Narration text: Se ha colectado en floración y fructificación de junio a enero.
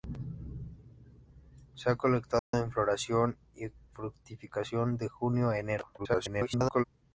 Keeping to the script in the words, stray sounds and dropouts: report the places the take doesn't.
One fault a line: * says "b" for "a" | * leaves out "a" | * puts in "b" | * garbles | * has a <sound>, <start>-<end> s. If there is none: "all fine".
* has a dropout, 2.4-2.5 s
* garbles